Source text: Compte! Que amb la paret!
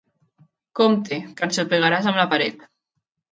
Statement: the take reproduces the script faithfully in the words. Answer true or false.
false